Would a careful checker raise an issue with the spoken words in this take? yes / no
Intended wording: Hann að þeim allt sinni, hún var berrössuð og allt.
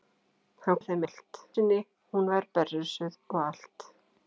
no